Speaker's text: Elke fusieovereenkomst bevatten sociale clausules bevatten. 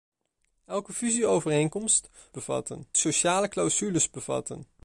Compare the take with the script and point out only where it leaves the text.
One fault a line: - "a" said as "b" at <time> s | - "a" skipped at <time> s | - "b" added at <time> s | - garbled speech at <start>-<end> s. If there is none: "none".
none